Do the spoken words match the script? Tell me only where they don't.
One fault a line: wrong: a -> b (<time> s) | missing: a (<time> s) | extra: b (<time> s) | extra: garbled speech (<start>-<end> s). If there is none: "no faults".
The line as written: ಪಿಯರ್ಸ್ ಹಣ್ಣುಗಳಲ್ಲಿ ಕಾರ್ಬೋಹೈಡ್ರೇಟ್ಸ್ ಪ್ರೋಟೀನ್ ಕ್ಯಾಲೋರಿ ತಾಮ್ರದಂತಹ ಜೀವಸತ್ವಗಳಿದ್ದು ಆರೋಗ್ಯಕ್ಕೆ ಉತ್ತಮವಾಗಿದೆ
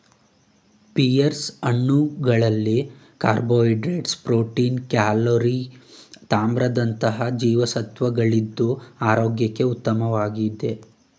no faults